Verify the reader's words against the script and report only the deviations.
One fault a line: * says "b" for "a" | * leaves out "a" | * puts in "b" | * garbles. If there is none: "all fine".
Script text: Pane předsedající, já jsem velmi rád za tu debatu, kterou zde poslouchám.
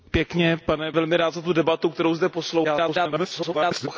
* leaves out "předsedající já jsem"
* garbles